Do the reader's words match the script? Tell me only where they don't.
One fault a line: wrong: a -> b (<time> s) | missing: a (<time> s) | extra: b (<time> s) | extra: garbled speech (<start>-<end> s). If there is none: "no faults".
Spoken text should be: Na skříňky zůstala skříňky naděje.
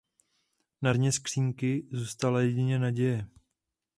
extra: dně (0.9 s)
wrong: skříňky -> jedině (2.4 s)